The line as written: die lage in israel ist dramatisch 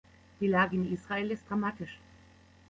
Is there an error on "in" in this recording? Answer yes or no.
no